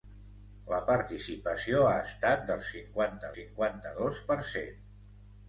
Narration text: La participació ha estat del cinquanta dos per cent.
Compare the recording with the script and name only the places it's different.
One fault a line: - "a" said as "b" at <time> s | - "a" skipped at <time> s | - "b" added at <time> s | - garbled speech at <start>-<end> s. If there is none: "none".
- "cinquanta" added at 3.3 s